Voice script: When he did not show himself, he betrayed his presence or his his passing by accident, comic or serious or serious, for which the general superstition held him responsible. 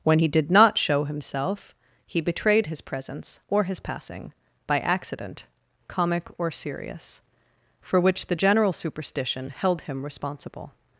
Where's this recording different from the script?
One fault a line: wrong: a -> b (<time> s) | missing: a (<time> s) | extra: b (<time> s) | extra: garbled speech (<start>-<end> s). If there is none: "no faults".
missing: his (3.8 s)
missing: or serious (7.2 s)